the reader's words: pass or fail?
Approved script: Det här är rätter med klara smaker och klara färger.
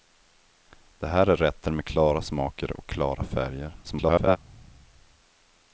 fail